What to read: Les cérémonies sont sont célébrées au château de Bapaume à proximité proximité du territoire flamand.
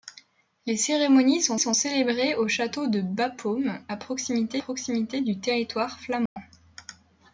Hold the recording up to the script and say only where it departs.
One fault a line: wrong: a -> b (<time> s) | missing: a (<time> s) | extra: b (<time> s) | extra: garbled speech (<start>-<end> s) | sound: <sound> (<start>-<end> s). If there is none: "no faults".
sound: dropout (6.3-6.4 s)